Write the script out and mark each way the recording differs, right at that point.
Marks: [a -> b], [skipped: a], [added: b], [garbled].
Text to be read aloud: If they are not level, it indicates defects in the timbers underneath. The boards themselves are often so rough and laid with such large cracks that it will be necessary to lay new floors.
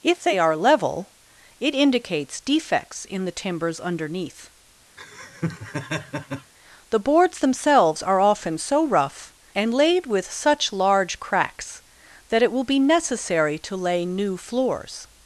If they are [skipped: not] level, it indicates defects in the timbers underneath. The boards themselves are often so rough and laid with such large cracks that it will be necessary to lay new floors.